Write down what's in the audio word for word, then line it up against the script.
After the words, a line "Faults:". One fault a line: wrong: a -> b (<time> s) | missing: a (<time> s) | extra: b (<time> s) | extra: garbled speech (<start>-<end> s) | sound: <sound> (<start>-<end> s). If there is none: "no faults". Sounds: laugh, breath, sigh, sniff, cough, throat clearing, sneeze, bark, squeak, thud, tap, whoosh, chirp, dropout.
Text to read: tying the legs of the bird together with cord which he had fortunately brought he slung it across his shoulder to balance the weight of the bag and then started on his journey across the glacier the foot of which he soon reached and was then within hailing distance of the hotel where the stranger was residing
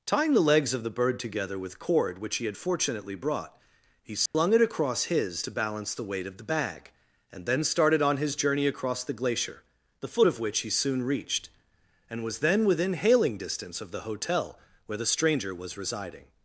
tying the legs of the bird together with cord which he had fortunately brought he slung it across his to balance the weight of the bag and then started on his journey across the glacier the foot of which he soon reached and was then within hailing distance of the hotel where the stranger was residing
Faults:
sound: dropout (4.3-4.3 s)
missing: shoulder (5.4 s)